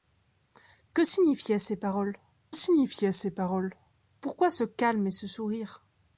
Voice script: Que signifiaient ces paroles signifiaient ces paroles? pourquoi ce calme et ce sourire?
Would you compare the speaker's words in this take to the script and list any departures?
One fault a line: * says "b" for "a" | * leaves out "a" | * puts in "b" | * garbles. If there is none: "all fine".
all fine